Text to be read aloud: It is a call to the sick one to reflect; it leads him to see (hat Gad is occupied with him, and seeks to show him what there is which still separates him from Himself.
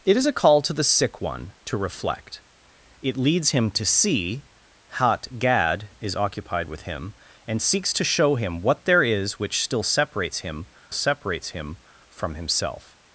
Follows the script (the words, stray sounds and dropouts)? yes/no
no